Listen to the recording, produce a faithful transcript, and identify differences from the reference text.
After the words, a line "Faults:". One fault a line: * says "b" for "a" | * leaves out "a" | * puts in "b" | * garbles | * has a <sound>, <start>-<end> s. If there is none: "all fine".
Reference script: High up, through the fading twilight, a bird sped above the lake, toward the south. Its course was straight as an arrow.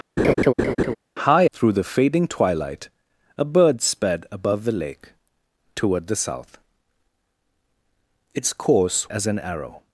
High through the fading twilight, a bird sped above the lake, toward the south. Its course as an arrow.
Faults:
* has a laugh, 0.2-1.0 s
* leaves out "up"
* leaves out "was straight"